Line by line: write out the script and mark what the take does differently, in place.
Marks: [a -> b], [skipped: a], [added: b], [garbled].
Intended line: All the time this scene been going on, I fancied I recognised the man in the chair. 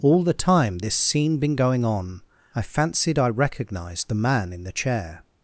All the time this scene been going on, I fancied I recognised the man in the chair.